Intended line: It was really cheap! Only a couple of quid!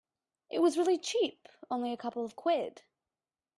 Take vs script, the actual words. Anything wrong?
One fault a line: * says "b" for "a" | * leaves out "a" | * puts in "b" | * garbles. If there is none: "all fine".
all fine